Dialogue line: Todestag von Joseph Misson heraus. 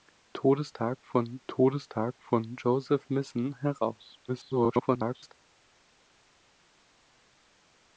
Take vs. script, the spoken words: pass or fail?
fail